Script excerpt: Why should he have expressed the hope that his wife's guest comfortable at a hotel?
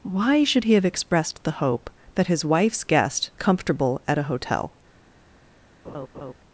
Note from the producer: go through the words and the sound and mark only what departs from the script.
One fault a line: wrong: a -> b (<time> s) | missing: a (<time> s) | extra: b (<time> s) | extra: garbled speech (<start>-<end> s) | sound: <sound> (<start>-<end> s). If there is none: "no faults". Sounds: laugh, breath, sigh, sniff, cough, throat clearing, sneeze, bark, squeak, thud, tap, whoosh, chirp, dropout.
sound: laugh (5.8-6.3 s)